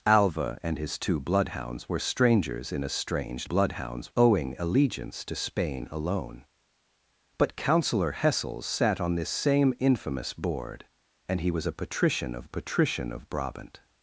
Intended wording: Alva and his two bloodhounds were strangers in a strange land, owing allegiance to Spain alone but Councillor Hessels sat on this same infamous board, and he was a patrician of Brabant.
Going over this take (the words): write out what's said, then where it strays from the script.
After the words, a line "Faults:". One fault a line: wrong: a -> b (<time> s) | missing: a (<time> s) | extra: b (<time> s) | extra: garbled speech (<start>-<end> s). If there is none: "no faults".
Alva and his two bloodhounds were strangers in a strange bloodhounds, owing allegiance to Spain alone but Councillor Hessels sat on this same infamous board, and he was a patrician of patrician of Brabant.
Faults:
wrong: land -> bloodhounds (3.4 s)
extra: patrician of (12.5 s)